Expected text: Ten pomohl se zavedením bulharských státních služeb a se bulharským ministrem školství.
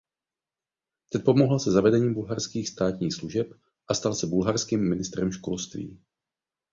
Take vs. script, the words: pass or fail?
fail